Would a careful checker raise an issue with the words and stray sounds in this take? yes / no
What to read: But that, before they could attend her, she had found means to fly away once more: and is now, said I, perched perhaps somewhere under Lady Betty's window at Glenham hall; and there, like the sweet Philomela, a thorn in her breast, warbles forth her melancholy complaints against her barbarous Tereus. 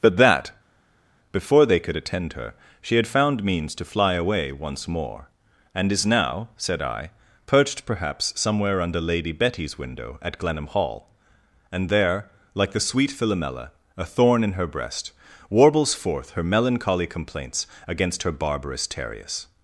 no